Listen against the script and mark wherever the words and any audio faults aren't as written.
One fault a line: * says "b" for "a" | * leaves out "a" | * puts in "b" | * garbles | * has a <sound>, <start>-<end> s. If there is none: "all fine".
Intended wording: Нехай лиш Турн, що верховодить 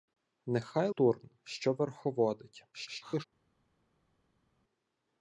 * leaves out "лиш"
* garbles